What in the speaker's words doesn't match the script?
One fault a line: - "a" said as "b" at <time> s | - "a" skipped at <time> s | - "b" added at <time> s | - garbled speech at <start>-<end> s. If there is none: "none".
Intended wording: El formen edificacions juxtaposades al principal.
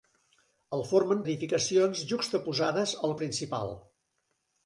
none